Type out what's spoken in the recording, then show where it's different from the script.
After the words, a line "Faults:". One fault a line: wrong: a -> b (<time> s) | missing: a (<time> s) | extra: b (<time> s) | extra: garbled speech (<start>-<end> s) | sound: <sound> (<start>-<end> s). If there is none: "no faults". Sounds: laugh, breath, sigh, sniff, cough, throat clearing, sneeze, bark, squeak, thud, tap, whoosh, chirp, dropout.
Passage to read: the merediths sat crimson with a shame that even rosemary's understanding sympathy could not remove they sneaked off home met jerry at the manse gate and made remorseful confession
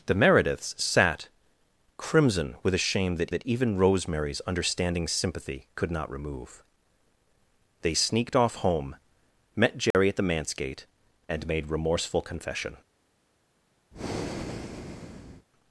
the merediths sat crimson with a shame that that even rosemary's understanding sympathy could not remove they sneaked off home met jerry at the manse gate and made remorseful confession
Faults:
extra: that (3.3 s)
sound: dropout (9.9-9.9 s)
sound: breath (13.9-15.5 s)